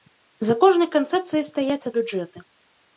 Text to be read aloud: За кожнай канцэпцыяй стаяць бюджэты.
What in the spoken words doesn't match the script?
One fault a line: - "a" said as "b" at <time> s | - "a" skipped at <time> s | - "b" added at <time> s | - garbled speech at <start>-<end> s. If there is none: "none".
none